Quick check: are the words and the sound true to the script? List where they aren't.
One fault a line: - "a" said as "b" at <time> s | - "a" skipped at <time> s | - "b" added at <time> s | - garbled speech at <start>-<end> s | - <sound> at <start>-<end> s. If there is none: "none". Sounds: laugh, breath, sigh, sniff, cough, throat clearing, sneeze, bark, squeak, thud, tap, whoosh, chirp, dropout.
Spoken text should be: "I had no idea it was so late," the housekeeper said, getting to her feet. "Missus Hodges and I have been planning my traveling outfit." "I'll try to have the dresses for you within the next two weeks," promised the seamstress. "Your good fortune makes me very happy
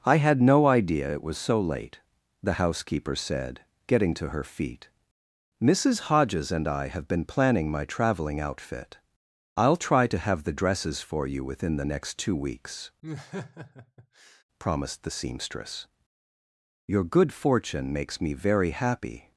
- laugh at 13.0-14.4 s